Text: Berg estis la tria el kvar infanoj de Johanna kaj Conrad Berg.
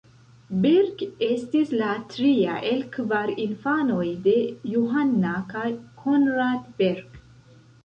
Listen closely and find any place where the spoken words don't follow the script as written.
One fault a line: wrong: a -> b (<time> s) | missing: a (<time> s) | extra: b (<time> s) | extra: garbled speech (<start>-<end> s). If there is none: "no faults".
no faults